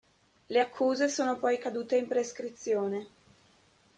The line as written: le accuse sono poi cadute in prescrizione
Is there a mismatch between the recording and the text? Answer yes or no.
no